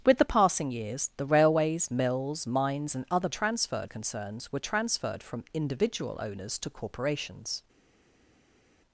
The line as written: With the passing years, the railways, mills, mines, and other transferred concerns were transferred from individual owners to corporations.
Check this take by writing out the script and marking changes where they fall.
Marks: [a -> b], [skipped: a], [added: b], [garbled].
With the passing years, the railways, mills, mines, and other transferred concerns were transferred from individual owners to corporations.